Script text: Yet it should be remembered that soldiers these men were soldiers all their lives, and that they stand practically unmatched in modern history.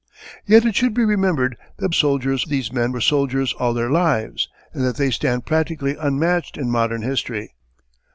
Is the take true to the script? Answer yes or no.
yes